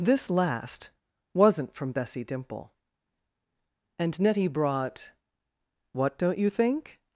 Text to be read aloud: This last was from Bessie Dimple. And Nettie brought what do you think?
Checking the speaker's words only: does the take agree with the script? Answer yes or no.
no